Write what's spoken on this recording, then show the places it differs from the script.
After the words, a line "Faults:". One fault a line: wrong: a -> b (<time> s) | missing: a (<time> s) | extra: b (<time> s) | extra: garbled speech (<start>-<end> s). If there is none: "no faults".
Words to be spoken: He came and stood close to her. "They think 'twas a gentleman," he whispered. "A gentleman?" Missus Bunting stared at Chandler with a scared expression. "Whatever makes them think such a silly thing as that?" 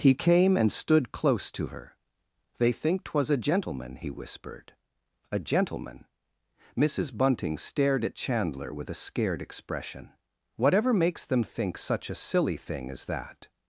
He came and stood close to her. "They think 'twas a gentleman," he whispered. "A gentleman?" Missus Bunting stared at Chandler with a scared expression. "Whatever makes them think such a silly thing as that?"
Faults:
no faults